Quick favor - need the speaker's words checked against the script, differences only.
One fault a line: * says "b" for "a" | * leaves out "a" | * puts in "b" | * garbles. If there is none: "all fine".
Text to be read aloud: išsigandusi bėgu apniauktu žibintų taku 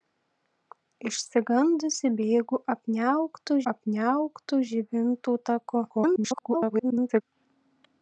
* puts in "apniauktu"
* garbles